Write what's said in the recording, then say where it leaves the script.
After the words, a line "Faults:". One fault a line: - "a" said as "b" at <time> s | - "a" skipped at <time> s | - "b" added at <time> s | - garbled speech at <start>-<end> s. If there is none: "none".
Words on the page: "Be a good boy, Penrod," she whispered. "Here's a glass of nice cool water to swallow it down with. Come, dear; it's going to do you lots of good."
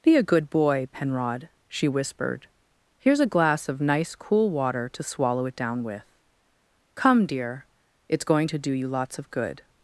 "Be a good boy, Penrod," she whispered. "Here's a glass of nice cool water to swallow it down with. Come, dear; it's going to do you lots of good."
Faults:
none